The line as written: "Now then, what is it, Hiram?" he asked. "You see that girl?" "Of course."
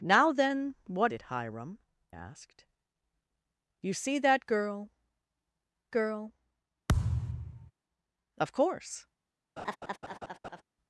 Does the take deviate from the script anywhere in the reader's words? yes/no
yes